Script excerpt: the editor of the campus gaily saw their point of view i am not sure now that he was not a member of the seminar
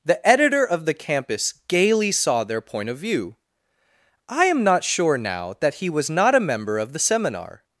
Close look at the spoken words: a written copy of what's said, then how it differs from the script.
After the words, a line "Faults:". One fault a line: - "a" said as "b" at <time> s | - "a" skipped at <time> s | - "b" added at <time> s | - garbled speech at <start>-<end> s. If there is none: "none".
the editor of the campus gaily saw their point of view i am not sure now that he was not a member of the seminar
Faults:
none